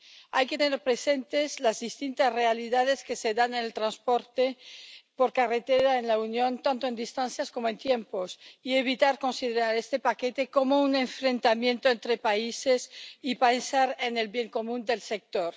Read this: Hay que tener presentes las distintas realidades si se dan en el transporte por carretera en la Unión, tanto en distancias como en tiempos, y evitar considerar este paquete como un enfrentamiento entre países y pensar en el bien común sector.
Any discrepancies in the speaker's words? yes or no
yes